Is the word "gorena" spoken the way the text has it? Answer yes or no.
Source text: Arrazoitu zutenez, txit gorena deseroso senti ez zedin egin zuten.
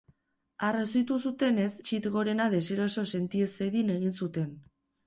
yes